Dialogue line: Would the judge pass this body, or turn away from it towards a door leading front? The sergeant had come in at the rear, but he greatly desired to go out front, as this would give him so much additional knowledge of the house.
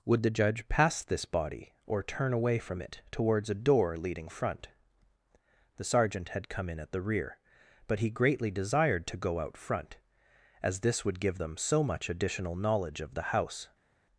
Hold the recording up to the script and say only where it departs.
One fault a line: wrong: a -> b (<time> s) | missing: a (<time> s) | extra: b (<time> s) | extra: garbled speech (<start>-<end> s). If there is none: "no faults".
wrong: him -> them (11.3 s)